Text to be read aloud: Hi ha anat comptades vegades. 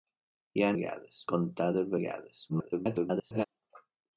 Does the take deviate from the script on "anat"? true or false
true